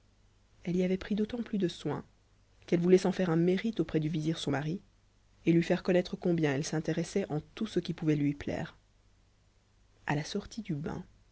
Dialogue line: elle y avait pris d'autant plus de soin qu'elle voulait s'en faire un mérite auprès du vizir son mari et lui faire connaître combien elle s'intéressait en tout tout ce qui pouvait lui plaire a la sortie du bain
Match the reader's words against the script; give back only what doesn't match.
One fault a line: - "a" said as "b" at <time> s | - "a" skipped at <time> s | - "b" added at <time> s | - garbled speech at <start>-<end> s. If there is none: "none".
- "tout" skipped at 7.7 s